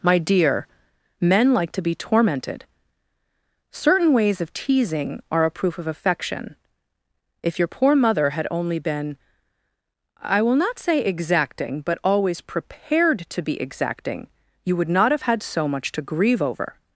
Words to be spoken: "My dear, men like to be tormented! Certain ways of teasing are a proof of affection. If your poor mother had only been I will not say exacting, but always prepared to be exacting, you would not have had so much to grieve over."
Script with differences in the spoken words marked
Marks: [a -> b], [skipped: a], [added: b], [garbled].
"My dear, men like to be tormented! Certain ways of teasing are a proof of affection. If your poor mother had only been I will not say exacting, but always prepared to be exacting, you would not have had so much to grieve over."